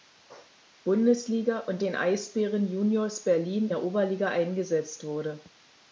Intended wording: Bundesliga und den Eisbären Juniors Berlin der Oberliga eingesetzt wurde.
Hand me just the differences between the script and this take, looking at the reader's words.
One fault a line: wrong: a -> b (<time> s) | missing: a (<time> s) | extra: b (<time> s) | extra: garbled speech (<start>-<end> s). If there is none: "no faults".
no faults